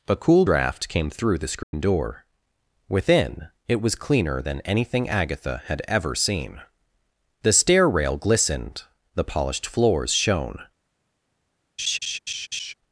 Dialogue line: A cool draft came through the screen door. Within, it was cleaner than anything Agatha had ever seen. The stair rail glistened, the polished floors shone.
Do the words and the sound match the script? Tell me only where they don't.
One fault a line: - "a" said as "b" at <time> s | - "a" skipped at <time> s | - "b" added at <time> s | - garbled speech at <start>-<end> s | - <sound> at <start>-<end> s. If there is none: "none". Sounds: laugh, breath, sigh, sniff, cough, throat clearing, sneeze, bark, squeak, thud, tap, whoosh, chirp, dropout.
- dropout at 1.6-1.7 s
- laugh at 11.8-12.7 s